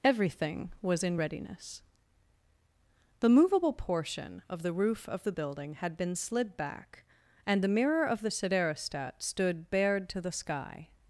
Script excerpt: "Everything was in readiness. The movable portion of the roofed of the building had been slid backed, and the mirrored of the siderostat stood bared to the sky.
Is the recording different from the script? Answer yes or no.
yes